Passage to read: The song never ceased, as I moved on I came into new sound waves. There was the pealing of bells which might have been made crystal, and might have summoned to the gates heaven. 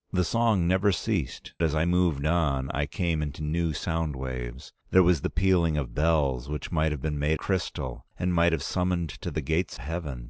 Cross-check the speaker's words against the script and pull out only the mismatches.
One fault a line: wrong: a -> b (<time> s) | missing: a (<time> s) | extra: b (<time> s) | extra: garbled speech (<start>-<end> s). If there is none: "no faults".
no faults